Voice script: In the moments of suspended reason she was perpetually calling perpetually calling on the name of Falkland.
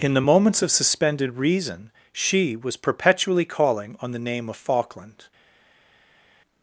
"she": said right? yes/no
yes